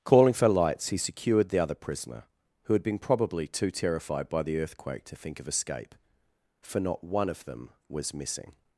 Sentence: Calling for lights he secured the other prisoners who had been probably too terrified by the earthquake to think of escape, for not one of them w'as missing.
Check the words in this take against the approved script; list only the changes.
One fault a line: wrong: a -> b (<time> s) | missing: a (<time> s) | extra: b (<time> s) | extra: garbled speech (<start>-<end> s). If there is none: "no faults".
wrong: prisoners -> prisoner (1.8 s)